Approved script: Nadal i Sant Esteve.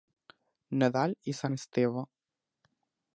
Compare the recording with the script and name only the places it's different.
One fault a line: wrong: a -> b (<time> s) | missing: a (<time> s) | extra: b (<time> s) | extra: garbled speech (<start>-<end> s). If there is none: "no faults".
no faults